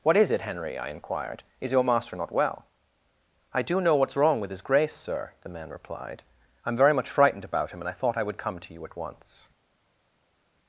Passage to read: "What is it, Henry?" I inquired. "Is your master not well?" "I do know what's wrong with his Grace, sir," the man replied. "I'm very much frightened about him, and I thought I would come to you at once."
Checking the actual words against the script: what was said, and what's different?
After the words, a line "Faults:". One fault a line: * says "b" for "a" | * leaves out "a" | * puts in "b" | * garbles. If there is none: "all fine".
"What is it, Henry?" I inquired. "Is your master not well?" "I do know what's wrong with his Grace, sir," the man replied. "I'm very much frightened about him, and I thought I would come to you at once."
Faults:
all fine